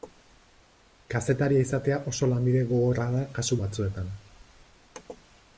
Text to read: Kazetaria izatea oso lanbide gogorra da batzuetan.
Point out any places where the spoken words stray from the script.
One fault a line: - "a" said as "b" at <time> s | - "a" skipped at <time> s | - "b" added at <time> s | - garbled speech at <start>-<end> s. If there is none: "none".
- "kasu" added at 3.4 s